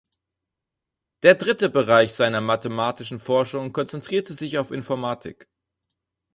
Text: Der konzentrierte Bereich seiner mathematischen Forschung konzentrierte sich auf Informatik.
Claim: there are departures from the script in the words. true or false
true